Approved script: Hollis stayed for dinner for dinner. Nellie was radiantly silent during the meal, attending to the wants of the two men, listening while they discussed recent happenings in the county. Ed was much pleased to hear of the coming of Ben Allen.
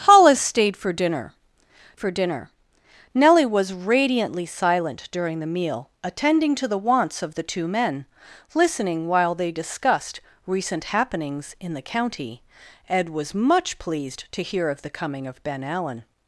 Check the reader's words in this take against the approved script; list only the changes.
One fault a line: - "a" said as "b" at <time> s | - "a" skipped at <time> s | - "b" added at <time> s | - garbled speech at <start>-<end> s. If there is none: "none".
none